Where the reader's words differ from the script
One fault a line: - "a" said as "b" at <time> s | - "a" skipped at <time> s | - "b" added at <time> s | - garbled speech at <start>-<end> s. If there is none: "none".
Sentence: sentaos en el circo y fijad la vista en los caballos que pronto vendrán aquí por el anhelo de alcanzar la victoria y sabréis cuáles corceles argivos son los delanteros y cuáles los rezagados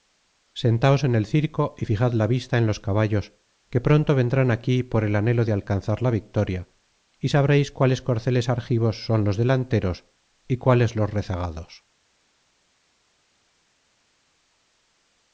none